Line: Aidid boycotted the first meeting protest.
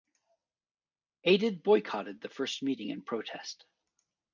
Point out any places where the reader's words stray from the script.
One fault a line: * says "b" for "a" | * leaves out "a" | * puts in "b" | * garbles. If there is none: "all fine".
* puts in "in"